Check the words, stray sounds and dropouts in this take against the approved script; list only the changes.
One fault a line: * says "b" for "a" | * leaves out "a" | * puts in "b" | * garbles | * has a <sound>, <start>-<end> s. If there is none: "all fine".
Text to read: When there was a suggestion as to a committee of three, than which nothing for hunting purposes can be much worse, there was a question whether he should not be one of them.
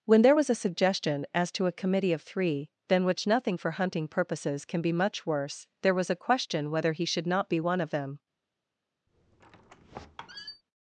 * has a squeak, 9.1-10.6 s